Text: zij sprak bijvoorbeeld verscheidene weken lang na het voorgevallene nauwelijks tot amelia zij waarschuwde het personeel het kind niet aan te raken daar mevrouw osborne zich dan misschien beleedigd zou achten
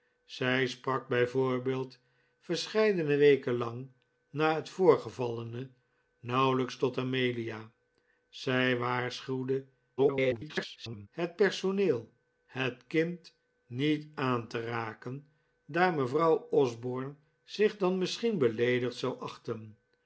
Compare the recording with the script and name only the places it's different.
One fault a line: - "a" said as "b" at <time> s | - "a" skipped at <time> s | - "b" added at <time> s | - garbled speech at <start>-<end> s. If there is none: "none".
- garbled speech at 10.0-11.1 s